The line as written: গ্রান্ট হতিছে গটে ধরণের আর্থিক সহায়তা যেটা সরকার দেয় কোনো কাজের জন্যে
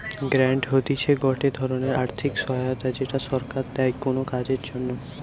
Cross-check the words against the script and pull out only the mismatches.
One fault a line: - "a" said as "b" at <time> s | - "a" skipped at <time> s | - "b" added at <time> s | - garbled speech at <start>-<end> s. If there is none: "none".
none